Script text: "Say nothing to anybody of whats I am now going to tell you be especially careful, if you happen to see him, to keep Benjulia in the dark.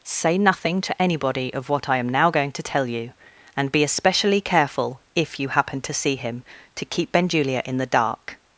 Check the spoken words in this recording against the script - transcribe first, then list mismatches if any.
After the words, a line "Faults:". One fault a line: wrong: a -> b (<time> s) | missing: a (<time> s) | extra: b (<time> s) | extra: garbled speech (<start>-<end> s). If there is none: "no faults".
"Say nothing to anybody of what I am now going to tell you and be especially careful, if you happen to see him, to keep Benjulia in the dark.
Faults:
wrong: whats -> what (1.7 s)
extra: and (3.6 s)